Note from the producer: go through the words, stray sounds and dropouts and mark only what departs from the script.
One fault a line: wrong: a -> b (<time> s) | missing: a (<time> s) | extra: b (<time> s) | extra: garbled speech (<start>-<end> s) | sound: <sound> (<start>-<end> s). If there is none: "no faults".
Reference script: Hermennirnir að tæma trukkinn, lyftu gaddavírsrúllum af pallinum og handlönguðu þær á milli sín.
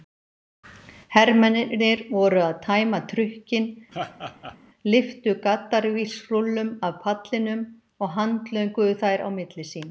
extra: voru (2.1 s)
sound: laugh (3.9-4.6 s)